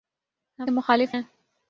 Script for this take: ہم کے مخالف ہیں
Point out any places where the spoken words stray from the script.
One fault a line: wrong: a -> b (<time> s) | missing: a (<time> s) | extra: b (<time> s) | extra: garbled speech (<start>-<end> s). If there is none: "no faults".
no faults